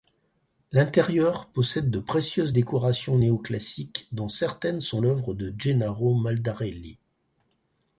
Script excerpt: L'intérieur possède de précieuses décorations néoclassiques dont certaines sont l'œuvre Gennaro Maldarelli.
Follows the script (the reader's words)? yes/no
no